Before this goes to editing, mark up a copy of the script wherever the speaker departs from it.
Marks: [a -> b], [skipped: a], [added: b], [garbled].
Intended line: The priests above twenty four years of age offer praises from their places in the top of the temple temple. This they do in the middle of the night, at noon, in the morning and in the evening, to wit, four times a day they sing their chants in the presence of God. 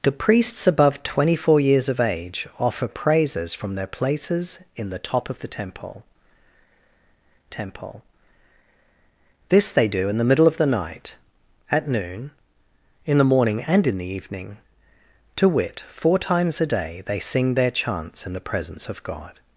The priests above twenty four years of age offer praises from their places in the top of the temple temple. This they do in the middle of the night, at noon, in the morning and in the evening, to wit, four times a day they sing their chants in the presence of God.